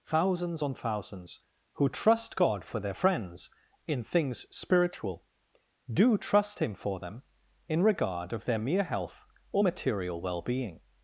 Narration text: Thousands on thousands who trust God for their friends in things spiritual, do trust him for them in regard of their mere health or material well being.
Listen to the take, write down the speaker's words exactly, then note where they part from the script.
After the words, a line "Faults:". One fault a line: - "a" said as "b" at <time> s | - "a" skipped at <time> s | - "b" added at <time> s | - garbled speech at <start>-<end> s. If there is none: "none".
Thousands on thousands who trust God for their friends in things spiritual, do trust him for them in regard of their mere health or material well being.
Faults:
none